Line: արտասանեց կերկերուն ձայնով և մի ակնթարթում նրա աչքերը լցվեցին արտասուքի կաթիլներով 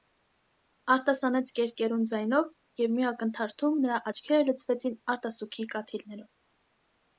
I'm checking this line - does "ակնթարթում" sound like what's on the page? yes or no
yes